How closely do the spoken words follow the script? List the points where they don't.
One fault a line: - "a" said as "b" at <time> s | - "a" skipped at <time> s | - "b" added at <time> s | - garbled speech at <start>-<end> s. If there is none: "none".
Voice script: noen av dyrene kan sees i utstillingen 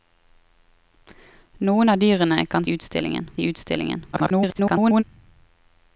- "sees" said as "utstillingen" at 2.7 s
- garbled speech at 4.1-5.0 s